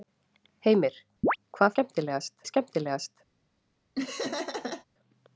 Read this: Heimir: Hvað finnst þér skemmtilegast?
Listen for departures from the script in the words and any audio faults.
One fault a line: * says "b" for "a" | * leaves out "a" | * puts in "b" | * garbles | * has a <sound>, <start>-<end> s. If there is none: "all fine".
* has a chirp, 1.2-1.4 s
* says "skemmtilegast" for "finnst"
* has a laugh, 4.0-4.9 s